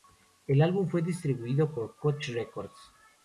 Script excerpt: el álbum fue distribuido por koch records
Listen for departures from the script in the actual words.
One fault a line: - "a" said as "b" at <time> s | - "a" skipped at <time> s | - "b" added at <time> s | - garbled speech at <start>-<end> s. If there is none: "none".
none